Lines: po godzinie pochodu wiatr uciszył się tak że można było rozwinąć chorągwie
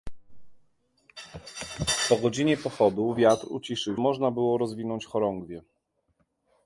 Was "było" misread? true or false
false